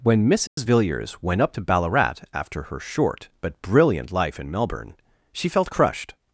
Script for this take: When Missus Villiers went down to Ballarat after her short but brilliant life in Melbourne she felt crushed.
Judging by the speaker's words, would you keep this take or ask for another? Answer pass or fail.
fail